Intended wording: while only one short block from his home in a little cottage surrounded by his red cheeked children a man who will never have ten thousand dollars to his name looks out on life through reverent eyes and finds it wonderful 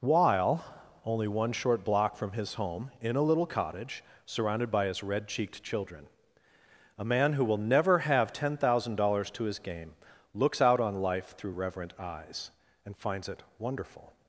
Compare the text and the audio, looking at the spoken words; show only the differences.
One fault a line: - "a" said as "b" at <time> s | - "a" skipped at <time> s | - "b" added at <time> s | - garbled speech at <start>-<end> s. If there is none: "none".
- "name" said as "game" at 9.6 s